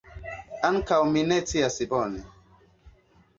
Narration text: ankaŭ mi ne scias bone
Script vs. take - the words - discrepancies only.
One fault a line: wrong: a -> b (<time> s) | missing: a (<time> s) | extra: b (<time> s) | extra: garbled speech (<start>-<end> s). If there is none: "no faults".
no faults